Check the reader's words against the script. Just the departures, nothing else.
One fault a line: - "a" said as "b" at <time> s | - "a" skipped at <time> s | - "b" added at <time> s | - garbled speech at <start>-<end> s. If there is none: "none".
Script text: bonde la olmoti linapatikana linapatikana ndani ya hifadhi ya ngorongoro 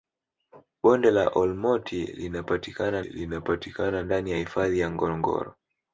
none